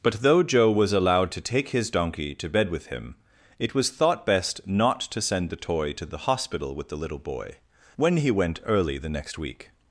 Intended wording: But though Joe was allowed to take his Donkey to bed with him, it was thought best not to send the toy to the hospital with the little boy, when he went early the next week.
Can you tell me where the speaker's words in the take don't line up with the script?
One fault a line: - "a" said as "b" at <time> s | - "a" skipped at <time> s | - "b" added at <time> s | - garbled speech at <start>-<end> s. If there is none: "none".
none